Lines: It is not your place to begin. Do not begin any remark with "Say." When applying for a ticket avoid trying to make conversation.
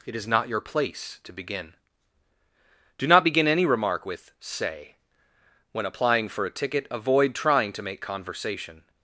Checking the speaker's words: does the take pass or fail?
pass